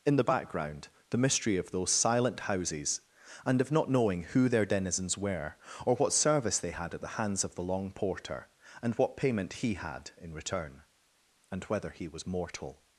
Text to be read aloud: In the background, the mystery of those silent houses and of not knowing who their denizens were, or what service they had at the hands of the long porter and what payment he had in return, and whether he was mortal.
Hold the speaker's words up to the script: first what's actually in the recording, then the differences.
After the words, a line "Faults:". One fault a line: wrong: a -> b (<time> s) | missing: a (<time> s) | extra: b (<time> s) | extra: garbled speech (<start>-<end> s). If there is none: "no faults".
In the background, the mystery of those silent houses and of not knowing who their denizens were, or what service they had at the hands of the long porter and what payment he had in return, and whether he was mortal.
Faults:
no faults